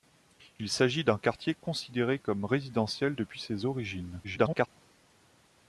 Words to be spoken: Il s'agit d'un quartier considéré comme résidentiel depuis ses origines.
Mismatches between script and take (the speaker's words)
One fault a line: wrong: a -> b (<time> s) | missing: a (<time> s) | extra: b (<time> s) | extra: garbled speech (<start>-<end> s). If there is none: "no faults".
extra: garbled speech (4.2-4.7 s)